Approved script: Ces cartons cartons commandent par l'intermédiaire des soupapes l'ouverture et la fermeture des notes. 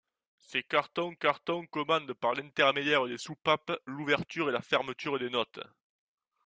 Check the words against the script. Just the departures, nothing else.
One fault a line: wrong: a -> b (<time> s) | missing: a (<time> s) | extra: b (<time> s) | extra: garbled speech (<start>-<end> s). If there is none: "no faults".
no faults